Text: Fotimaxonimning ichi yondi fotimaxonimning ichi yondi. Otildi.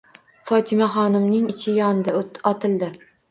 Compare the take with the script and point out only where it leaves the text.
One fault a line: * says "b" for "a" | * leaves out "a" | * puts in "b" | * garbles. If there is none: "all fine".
* leaves out "fotimaxonimning ichi yondi"